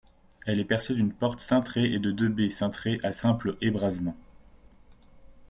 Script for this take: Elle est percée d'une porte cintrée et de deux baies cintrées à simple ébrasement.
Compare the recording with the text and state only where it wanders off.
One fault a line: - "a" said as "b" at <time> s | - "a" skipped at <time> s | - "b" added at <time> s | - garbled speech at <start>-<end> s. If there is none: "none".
none